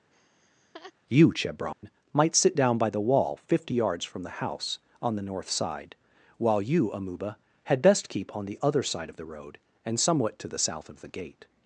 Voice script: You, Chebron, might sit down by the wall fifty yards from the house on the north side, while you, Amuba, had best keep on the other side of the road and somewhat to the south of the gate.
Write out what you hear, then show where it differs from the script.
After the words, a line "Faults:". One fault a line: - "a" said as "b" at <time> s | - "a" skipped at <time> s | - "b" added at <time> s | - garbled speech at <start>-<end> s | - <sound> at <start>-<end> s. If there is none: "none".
You, Chebron, might sit down by the wall fifty yards from the house on the north side, while you, Amuba, had best keep on the other side of the road and somewhat to the south of the gate.
Faults:
- laugh at 0.1-0.9 s
- dropout at 1.7-1.8 s